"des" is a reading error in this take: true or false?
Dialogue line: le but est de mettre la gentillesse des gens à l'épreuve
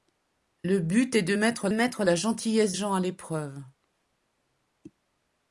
true